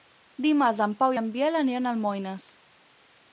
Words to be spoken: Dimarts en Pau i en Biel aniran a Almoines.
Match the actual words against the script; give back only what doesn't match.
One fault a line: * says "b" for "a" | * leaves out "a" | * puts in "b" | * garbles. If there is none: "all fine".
all fine